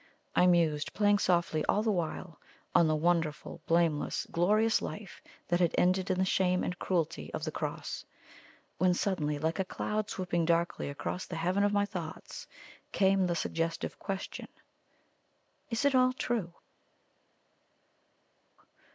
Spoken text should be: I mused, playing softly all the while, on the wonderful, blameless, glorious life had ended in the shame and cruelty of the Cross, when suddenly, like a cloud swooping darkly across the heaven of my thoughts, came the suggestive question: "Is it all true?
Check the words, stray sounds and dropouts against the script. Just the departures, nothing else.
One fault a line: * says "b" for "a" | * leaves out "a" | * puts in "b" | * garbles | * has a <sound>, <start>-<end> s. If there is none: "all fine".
* puts in "that"